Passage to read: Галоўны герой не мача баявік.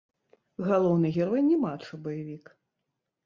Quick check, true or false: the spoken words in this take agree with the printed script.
true